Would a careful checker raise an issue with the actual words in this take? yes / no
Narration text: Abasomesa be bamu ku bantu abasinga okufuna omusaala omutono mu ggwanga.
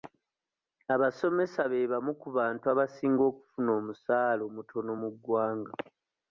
no